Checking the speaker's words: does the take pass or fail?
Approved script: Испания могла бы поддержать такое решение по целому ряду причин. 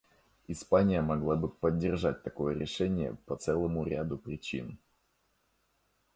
pass